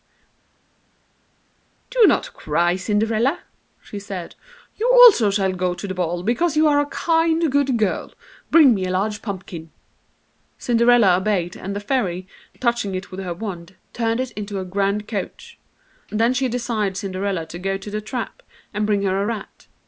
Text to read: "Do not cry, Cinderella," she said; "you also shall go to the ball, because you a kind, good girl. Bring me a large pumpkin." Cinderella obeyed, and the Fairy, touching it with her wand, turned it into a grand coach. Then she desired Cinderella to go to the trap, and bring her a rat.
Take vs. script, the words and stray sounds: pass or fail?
fail